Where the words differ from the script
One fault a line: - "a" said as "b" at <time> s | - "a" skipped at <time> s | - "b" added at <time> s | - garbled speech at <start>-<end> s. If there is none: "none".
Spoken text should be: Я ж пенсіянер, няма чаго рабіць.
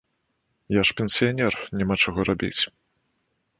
none